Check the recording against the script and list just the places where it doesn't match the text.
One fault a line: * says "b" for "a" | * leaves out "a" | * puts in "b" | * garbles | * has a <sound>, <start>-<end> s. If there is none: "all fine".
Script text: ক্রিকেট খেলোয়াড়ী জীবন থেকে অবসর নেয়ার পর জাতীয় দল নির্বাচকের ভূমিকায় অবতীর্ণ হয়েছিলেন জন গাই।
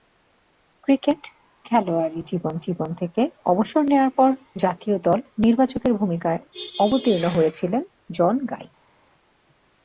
* puts in "জীবন"